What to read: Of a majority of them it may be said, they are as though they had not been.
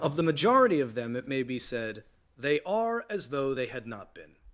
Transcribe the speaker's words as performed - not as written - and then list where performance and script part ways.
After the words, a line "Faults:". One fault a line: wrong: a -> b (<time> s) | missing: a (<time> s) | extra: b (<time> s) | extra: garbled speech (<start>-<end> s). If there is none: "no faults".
Of the majority of them it may be said, they are as though they had not been.
Faults:
wrong: a -> the (0.1 s)